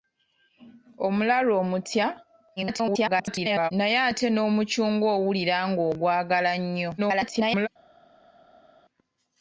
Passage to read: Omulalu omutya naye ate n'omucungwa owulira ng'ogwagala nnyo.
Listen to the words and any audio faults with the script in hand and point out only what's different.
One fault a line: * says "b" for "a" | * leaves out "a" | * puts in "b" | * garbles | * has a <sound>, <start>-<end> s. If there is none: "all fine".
* garbles
* garbles